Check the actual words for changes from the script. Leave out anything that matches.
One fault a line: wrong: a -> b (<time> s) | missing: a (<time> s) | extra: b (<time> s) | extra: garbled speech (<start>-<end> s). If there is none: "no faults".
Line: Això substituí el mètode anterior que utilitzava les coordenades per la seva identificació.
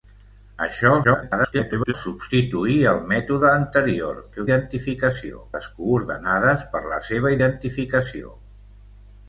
extra: garbled speech (1.0-1.9 s)
wrong: utilitzava -> identificació (4.5 s)